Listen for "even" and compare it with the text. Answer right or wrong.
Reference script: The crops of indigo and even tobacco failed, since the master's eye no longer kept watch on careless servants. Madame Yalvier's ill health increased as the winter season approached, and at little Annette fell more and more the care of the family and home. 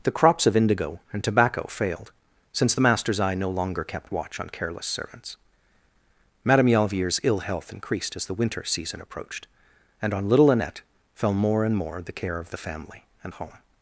wrong